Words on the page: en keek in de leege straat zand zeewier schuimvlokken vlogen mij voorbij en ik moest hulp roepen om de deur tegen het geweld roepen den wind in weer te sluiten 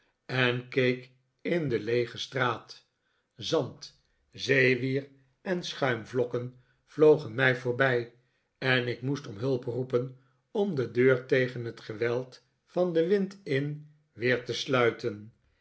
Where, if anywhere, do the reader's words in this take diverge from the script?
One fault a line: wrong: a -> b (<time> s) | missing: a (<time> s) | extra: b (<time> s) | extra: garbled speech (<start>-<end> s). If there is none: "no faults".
extra: en (5.4 s)
extra: om (9.3 s)
wrong: roepen -> van (12.7 s)